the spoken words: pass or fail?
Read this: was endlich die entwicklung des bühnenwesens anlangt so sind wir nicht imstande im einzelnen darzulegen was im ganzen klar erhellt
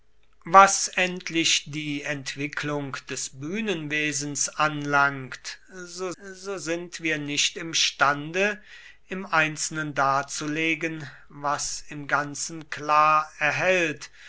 fail